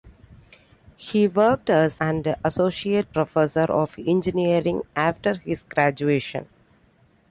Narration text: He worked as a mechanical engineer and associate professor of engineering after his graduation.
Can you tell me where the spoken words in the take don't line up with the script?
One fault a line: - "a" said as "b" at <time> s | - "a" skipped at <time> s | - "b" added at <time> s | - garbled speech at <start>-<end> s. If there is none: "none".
- "a mechanical engineer" skipped at 2.0 s